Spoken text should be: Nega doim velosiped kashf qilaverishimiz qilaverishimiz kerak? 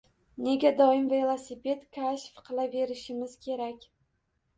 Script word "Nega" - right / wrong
right